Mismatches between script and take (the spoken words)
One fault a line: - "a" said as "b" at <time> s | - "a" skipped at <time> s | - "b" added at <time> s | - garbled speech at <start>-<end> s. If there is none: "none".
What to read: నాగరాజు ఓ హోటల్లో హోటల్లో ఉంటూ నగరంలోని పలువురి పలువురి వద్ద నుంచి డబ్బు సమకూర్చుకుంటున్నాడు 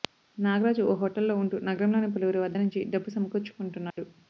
- "హోటల్లో" skipped at 1.3 s
- "పలువురి" skipped at 2.4 s